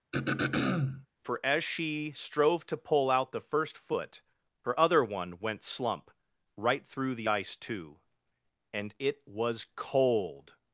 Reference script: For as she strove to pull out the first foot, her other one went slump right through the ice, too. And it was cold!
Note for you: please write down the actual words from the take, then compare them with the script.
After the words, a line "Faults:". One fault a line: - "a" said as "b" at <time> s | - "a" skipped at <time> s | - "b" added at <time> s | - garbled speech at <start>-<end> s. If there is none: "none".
For as she strove to pull out the first foot, her other one went slump right through the ice, too. And it was cold!
Faults:
none